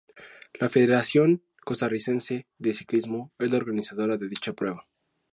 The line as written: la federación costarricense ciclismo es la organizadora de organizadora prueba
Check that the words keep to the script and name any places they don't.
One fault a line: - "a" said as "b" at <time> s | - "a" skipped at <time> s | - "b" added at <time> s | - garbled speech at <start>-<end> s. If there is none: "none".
- "de" added at 2.6 s
- "organizadora" said as "dicha" at 4.3 s